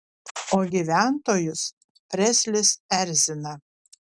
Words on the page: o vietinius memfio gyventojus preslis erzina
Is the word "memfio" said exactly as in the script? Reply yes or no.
no